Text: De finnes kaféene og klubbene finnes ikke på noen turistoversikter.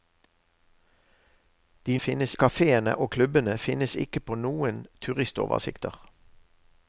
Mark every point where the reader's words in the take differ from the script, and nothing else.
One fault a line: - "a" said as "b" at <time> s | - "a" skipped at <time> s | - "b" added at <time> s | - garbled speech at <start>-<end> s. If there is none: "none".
none